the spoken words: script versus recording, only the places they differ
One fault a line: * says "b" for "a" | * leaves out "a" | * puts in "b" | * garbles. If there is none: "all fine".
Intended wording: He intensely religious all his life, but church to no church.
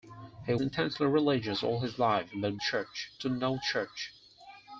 all fine